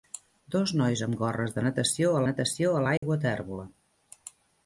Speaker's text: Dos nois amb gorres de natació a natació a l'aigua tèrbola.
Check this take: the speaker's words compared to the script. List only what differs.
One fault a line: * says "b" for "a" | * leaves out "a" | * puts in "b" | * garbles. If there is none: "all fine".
all fine